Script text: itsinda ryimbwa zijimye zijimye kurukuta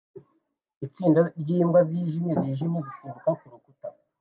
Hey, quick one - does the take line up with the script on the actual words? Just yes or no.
no